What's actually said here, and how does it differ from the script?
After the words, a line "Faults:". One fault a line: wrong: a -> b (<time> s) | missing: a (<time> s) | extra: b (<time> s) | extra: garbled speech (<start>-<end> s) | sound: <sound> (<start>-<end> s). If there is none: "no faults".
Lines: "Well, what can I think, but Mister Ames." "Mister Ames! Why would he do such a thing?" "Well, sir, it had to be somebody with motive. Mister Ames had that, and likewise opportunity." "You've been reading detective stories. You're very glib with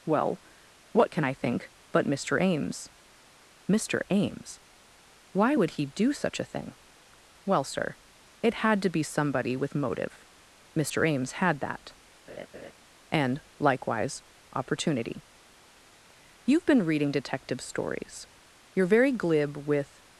"Well, what can I think, but Mister Ames." "Mister Ames! Why would he do such a thing?" "Well, sir, it had to be somebody with motive. Mister Ames had that, and likewise opportunity." "You've been reading detective stories. You're very glib with
Faults:
sound: laugh (12.3-12.7 s)